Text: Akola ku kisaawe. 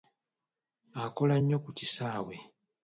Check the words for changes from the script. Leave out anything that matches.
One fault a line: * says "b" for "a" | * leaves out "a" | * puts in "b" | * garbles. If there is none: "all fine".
* puts in "nnyo"